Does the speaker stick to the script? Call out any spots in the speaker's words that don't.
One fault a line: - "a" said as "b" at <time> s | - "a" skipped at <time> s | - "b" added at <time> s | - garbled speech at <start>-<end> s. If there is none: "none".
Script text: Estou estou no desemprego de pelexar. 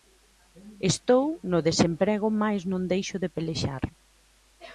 - "estou" skipped at 1.2 s
- "mais non deixo" added at 2.4 s